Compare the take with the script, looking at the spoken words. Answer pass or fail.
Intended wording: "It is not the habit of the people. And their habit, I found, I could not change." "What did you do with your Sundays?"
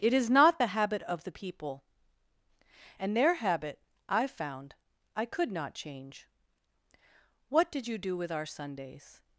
fail